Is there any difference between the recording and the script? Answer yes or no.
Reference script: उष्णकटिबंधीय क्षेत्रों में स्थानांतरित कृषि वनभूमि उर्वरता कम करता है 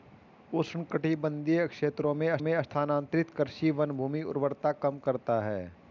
yes